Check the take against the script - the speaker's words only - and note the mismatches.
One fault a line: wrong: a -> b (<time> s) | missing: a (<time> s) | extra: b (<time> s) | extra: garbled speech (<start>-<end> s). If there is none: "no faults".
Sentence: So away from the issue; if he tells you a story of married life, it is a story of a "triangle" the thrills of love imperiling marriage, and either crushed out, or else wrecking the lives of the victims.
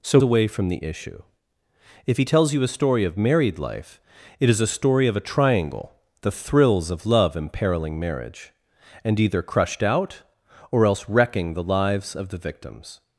no faults